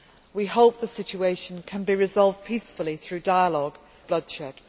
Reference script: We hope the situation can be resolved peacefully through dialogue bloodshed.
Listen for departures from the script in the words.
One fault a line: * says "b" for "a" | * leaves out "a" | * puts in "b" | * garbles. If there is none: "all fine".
all fine